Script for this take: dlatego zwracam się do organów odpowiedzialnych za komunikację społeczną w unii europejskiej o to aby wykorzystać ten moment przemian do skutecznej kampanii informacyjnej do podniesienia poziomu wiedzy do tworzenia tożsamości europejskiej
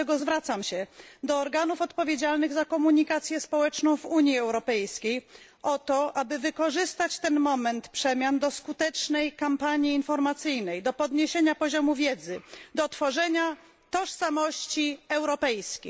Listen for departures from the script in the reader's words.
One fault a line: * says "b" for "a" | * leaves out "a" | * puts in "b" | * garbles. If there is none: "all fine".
all fine